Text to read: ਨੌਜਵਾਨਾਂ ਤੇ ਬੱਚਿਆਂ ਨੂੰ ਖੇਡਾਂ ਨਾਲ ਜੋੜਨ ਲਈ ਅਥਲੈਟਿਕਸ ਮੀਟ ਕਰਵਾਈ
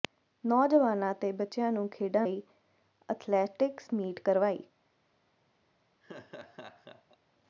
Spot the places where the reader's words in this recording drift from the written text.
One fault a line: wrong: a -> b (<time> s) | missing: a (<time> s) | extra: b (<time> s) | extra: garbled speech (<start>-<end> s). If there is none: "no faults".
missing: ਨਾਲ ਜੋੜਨ (2.2 s)